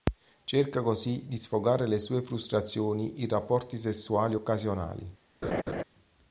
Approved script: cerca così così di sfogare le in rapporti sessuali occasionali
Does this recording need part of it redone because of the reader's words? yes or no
yes